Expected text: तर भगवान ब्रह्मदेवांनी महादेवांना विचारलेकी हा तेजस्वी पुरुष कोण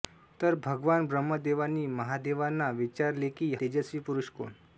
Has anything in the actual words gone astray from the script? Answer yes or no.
yes